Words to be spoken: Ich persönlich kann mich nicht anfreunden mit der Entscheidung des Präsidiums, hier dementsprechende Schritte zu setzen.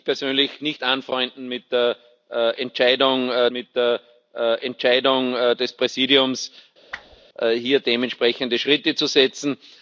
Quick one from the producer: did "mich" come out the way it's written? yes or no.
no